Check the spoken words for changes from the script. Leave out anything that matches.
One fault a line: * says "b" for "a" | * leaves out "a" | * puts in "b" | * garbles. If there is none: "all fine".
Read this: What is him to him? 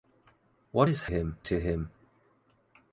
all fine